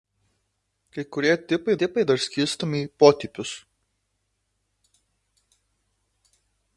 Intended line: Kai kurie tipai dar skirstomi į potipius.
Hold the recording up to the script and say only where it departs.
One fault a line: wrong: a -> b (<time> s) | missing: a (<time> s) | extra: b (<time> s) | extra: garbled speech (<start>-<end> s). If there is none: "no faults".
extra: tipai (1.8 s)